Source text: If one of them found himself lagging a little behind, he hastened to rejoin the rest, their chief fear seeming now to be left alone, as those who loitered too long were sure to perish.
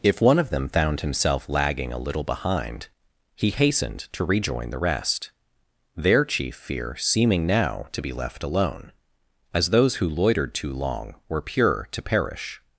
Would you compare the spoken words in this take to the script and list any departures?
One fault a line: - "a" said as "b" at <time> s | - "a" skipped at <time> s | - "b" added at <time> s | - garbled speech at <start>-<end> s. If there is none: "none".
- "sure" said as "pure" at 11.4 s